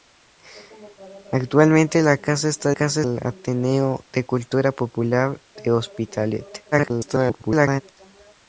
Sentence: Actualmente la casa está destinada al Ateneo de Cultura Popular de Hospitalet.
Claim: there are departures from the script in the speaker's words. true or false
true